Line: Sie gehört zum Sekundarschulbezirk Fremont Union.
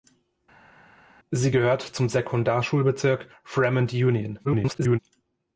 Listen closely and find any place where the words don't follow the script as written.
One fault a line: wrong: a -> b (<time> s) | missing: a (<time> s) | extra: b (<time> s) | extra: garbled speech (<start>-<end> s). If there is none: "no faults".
extra: garbled speech (4.4-5.0 s)